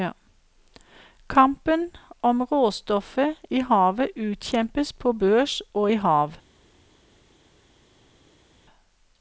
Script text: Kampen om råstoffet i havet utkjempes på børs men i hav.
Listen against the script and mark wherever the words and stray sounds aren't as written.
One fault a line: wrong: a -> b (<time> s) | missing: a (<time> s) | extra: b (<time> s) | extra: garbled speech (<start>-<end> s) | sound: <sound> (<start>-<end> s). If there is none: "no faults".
wrong: men -> og (5.7 s)